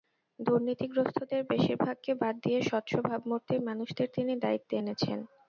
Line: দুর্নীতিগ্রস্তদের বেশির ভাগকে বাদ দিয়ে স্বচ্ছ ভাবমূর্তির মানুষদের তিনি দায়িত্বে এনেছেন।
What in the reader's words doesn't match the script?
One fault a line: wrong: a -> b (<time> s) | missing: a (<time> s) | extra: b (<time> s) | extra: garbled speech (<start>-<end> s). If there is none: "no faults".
no faults